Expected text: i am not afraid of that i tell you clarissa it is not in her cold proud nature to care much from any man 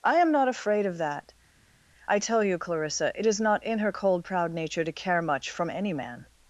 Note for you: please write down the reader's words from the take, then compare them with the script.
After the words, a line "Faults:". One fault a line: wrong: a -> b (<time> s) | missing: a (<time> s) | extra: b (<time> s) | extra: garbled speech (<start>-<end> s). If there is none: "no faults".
i am not afraid of that i tell you clarissa it is not in her cold proud nature to care much from any man
Faults:
no faults